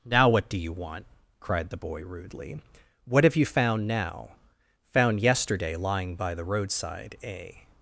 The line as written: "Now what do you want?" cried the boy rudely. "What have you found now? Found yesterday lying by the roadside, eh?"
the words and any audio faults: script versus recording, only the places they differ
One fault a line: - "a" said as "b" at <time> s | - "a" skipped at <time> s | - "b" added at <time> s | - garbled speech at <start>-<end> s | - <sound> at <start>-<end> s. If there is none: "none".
none